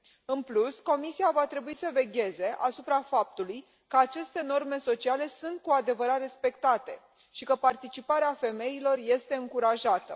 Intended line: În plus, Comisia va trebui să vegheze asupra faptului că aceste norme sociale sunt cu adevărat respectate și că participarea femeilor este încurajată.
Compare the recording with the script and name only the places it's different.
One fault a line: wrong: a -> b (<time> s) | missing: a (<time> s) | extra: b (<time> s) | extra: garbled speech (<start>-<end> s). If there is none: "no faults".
no faults